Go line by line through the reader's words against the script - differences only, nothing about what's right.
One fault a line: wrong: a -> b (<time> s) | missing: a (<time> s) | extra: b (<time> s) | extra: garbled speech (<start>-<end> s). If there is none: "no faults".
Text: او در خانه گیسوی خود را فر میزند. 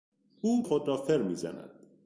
missing: در خانه گیسوی (0.7 s)